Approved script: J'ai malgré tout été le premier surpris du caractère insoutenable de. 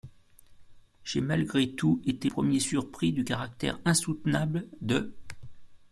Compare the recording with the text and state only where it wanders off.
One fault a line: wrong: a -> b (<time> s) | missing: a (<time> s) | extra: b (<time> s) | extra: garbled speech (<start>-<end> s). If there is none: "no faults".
missing: le (2.3 s)